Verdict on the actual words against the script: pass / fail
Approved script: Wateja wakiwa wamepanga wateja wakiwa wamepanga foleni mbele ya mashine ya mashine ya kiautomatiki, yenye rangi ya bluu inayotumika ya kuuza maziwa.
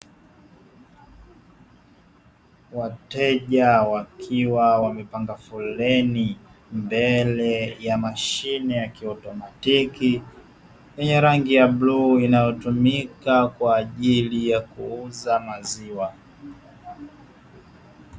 fail